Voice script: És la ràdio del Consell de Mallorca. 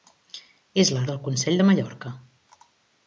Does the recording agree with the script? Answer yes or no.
no